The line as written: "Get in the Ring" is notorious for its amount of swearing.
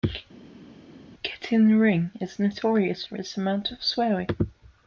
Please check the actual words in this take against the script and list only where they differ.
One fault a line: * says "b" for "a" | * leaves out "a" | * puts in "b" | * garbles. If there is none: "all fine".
all fine